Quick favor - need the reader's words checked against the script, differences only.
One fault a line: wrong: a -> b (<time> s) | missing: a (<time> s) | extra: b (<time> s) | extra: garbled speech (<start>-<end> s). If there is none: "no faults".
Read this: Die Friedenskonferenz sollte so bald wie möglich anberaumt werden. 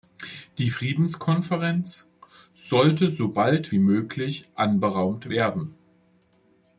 no faults